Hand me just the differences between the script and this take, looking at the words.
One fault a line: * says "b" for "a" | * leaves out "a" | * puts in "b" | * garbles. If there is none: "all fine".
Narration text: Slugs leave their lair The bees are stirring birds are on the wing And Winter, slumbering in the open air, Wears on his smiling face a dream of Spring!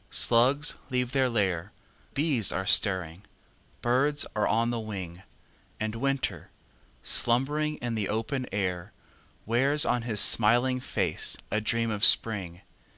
* leaves out "The"